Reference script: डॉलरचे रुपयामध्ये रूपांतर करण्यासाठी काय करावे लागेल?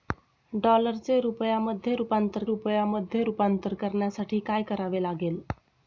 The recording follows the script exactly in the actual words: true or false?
false